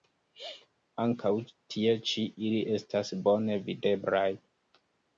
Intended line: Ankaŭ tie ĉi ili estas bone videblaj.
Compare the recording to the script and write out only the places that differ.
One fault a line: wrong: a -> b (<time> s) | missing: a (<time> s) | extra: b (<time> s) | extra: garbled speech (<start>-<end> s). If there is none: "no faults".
no faults